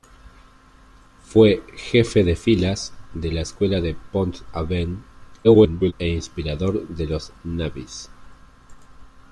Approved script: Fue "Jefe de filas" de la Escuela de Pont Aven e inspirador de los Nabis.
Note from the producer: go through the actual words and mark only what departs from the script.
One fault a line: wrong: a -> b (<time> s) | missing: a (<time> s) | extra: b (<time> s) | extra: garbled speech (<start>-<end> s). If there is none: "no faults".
extra: garbled speech (5.4-5.9 s)